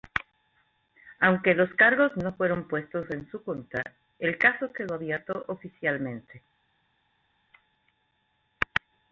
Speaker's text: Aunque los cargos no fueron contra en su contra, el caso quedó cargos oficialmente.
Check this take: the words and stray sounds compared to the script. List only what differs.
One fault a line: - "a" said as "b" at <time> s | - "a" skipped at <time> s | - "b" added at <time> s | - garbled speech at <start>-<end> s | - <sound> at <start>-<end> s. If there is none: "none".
- "contra" said as "puestos" at 2.7 s
- "cargos" said as "abierto" at 4.9 s